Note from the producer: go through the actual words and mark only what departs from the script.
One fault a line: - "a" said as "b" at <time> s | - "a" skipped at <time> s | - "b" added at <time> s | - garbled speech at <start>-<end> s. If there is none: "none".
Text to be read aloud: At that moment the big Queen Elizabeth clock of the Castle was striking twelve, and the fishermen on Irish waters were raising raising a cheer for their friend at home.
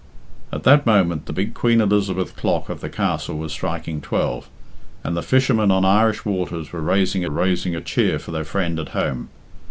none